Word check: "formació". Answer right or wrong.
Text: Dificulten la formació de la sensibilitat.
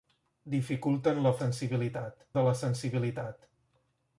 wrong